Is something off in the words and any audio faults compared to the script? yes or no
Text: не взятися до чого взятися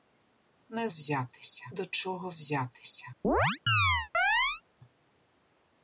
yes